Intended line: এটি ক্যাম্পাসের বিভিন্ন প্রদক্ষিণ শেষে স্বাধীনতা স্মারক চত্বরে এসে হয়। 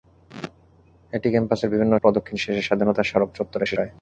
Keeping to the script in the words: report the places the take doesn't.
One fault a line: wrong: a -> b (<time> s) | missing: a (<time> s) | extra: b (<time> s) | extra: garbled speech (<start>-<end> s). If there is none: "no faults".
no faults